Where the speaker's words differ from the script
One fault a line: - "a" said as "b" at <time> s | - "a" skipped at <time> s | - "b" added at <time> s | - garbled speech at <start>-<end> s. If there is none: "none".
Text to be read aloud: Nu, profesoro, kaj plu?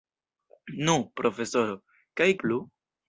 none